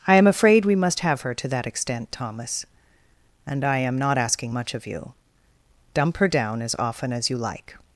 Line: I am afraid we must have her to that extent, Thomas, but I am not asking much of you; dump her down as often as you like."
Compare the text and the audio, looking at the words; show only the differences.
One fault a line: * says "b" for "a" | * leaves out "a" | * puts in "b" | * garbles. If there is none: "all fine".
* says "and" for "but"